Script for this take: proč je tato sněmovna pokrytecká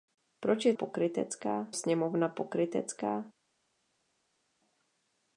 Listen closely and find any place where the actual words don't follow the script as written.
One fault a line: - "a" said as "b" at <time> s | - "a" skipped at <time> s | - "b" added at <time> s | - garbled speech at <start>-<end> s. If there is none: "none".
- "tato" said as "pokrytecká" at 0.7 s